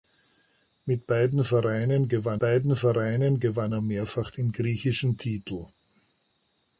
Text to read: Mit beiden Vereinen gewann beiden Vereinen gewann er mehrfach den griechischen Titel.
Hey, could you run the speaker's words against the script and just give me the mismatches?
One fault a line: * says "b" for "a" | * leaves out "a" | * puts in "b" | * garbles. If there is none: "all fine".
all fine